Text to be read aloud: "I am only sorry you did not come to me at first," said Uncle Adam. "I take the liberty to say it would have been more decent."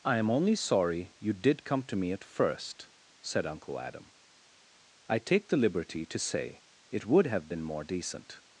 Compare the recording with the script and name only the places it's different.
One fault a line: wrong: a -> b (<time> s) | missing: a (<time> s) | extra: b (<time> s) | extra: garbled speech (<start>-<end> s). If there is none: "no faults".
missing: not (1.6 s)